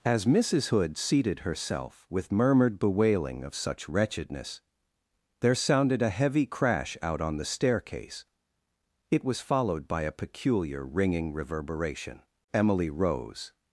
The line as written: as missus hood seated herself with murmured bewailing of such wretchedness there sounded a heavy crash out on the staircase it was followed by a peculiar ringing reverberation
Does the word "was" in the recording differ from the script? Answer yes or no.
no